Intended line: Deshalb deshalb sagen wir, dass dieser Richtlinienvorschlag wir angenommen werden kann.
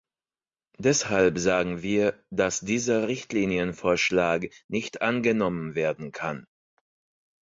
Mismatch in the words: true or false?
true